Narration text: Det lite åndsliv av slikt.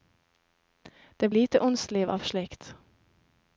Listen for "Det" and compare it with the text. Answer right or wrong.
right